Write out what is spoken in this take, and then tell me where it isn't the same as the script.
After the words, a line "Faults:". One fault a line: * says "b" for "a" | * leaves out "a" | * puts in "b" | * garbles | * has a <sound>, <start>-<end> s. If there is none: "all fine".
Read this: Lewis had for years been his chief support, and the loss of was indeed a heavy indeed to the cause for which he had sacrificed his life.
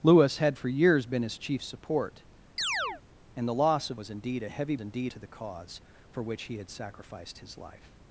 Lewis had for years been his chief support, and the loss of was indeed a heavy indeed to the cause for which he had sacrificed his life.
Faults:
* has a chirp, 2.6-3.0 s